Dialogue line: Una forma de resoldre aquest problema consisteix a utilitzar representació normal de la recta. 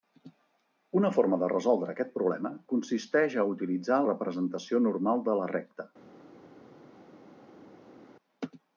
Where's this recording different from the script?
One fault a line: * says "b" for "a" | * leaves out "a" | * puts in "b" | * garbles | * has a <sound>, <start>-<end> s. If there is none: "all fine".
all fine